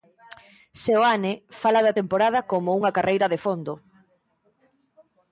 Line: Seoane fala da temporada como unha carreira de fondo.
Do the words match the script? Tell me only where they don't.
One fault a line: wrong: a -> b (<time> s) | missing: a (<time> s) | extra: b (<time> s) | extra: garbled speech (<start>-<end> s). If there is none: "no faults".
no faults